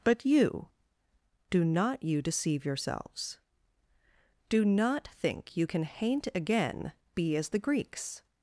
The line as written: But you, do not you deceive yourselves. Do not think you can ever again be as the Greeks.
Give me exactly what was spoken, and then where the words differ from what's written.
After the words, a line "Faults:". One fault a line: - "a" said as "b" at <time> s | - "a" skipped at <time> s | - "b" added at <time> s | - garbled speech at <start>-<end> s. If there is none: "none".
But you, do not you deceive yourselves. Do not think you can haint again be as the Greeks.
Faults:
- "ever" said as "haint" at 5.8 s